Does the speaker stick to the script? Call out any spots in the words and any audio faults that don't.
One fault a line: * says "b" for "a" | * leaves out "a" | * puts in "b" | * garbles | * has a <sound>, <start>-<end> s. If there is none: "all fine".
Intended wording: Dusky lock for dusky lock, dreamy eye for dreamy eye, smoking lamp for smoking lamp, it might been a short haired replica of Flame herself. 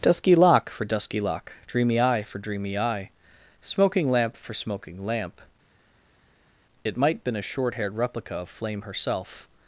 all fine